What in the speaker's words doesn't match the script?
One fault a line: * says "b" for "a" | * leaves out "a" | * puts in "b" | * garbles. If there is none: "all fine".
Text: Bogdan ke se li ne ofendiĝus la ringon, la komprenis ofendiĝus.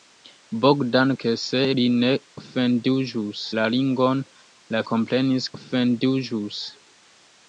all fine